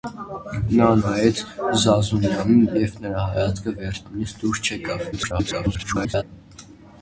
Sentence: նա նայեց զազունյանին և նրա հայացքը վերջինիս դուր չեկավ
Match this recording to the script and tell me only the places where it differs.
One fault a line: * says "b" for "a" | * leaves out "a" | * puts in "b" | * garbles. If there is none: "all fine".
* garbles